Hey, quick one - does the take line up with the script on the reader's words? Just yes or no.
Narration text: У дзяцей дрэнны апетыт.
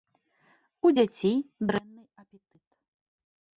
yes